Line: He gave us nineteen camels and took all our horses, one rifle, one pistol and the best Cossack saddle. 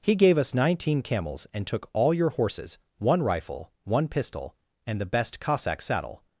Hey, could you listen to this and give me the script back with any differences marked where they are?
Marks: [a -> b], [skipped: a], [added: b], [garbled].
He gave us nineteen camels and took all [our -> your] horses, one rifle, one pistol and the best Cossack saddle.